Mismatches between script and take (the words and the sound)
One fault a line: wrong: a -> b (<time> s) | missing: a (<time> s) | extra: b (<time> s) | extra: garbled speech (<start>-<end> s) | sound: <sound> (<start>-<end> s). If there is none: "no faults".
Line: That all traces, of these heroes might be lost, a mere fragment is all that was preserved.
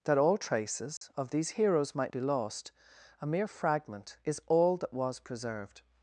sound: dropout (1.0-1.0 s)